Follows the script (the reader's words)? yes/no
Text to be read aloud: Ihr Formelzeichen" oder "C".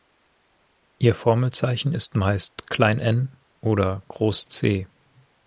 no